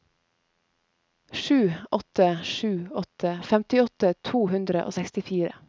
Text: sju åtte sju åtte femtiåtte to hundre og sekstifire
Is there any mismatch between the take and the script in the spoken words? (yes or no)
no